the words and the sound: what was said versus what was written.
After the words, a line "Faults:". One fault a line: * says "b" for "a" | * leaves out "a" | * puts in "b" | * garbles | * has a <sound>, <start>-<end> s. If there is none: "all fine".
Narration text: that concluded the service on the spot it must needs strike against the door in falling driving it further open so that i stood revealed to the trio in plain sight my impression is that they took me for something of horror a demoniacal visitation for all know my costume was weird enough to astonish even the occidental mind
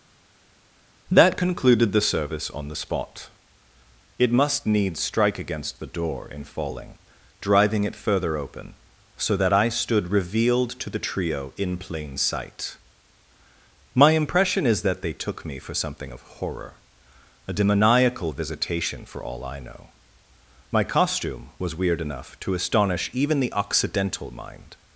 that concluded the service on the spot it must needs strike against the door in falling driving it further open so that i stood revealed to the trio in plain sight my impression is that they took me for something of horror a demoniacal visitation for all i know my costume was weird enough to astonish even the occidental mind
Faults:
* puts in "i"